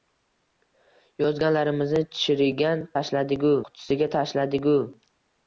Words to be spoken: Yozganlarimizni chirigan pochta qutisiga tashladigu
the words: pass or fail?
fail